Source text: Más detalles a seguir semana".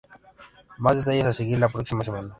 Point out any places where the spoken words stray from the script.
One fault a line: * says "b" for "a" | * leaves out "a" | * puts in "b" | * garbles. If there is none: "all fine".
* puts in "la próxima"